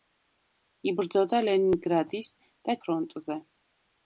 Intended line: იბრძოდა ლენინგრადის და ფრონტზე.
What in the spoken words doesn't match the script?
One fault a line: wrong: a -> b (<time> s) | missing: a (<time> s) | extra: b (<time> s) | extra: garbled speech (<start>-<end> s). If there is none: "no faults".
no faults